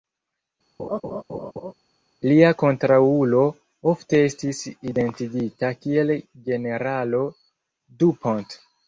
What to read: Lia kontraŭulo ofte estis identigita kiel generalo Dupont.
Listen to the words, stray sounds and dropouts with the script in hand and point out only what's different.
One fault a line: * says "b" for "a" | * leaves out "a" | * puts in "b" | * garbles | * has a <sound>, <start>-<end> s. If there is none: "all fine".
* has a laugh, 0.8-1.7 s